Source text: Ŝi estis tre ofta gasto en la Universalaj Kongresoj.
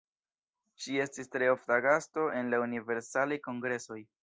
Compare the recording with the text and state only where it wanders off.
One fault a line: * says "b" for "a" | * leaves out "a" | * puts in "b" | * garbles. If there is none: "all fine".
all fine